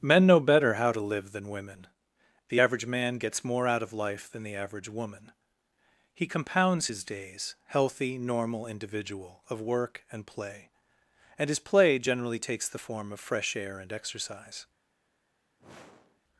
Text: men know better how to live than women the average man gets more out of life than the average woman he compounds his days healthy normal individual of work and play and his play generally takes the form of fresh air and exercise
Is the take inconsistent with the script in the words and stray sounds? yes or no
yes